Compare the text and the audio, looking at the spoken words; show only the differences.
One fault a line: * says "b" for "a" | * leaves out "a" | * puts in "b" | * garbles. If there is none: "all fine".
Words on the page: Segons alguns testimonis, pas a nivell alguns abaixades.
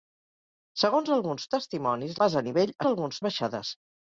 all fine